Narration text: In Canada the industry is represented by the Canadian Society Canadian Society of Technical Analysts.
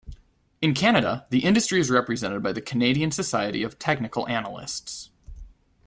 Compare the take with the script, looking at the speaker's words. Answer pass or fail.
fail